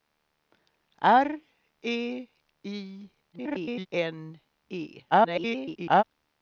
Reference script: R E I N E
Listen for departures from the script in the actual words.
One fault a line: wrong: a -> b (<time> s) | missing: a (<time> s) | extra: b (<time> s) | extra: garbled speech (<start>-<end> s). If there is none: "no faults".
extra: garbled speech (3.3-3.9 s)
extra: garbled speech (5.1-6.0 s)